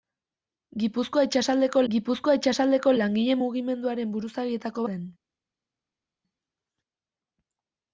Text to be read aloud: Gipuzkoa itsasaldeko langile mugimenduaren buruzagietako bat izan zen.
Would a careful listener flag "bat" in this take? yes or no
yes